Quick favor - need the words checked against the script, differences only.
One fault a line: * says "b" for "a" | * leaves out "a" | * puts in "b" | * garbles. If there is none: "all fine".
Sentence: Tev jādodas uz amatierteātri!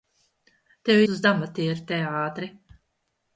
* leaves out "jādodas"